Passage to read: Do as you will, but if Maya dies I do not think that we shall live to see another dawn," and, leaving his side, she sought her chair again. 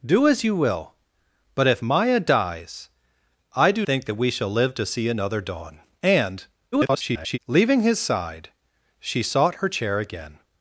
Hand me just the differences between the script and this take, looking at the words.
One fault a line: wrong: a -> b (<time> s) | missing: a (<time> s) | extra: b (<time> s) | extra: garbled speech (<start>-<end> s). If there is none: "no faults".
missing: not (3.9 s)
extra: garbled speech (6.7-7.4 s)